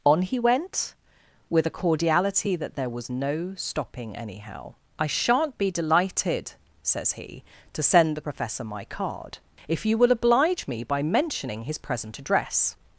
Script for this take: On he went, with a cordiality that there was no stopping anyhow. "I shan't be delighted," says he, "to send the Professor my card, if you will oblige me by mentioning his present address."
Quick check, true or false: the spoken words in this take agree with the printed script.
true